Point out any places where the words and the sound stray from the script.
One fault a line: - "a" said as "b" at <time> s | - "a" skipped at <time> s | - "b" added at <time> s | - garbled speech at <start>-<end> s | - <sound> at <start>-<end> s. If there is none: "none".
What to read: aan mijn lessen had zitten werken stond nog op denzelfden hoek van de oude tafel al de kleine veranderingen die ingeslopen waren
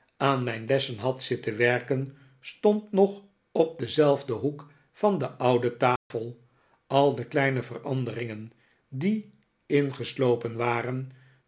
- dropout at 6.0-6.1 s